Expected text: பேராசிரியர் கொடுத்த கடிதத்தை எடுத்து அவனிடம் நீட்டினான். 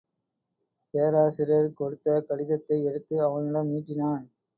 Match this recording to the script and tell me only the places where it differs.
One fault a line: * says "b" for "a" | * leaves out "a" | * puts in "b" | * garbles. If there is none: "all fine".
all fine